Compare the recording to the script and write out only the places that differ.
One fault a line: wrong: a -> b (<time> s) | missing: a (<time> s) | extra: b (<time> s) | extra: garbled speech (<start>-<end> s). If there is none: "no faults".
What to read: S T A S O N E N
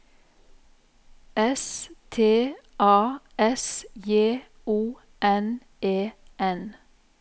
extra: J (4.0 s)